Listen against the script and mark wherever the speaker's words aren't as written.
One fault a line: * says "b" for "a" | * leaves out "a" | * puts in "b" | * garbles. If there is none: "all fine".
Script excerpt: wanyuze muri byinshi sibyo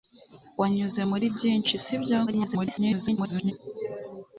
* garbles